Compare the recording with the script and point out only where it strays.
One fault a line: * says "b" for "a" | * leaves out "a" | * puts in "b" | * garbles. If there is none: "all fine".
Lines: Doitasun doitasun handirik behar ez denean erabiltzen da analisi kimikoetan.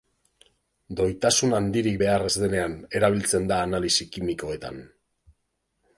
* leaves out "doitasun"